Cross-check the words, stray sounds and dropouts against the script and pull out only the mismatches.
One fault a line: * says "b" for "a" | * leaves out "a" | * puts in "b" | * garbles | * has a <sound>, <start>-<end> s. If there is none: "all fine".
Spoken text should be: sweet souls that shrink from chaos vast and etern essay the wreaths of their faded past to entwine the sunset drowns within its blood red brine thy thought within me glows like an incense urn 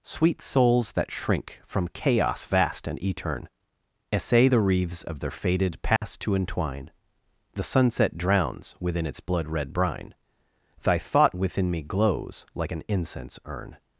* has a dropout, 6.0-6.0 s